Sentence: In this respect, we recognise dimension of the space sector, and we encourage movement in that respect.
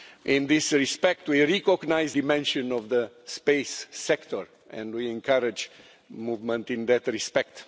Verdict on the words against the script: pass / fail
pass